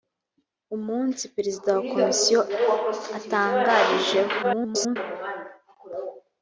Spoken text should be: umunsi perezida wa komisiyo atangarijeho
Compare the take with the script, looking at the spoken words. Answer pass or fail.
fail